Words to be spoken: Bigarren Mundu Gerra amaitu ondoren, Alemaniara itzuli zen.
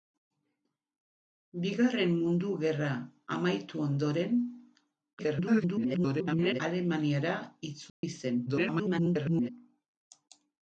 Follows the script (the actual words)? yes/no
no